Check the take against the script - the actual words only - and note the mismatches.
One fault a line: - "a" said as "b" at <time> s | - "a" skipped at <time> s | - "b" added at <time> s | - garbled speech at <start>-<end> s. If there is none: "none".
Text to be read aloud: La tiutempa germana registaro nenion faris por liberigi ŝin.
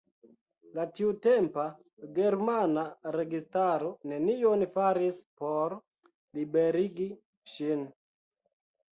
none